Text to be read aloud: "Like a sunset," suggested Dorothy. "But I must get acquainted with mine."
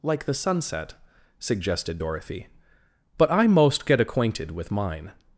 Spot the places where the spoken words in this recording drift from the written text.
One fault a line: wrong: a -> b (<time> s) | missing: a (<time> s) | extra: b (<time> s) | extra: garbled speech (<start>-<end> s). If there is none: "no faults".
wrong: a -> the (0.2 s)
wrong: must -> most (3.5 s)